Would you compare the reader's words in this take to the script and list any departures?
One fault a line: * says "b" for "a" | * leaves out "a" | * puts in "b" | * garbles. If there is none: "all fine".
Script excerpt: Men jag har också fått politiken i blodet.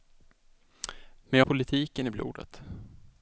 * leaves out "har också fått"